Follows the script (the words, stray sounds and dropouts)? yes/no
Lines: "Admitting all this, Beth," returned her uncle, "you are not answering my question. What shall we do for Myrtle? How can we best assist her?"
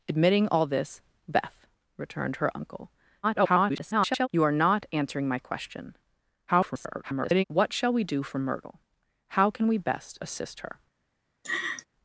no